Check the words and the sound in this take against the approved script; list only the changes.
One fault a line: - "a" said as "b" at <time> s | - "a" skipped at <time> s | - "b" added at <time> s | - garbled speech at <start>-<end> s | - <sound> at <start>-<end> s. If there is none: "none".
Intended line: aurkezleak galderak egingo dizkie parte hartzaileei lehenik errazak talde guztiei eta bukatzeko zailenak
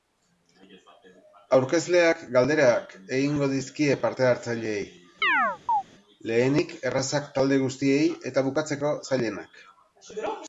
- chirp at 5.2-5.8 s